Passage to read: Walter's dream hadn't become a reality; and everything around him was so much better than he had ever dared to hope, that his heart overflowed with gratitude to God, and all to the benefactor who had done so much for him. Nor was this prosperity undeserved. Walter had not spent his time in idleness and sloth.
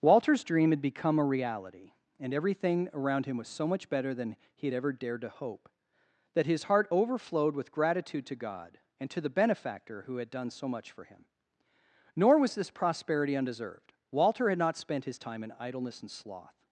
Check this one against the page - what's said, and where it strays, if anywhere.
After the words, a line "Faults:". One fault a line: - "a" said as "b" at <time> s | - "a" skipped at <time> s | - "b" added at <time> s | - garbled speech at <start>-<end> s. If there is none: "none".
Walter's dream had become a reality; and everything around him was so much better than he had ever dared to hope, that his heart overflowed with gratitude to God, and to the benefactor who had done so much for him. Nor was this prosperity undeserved. Walter had not spent his time in idleness and sloth.
Faults:
- "hadn't" said as "had" at 0.7 s
- "all" skipped at 9.1 s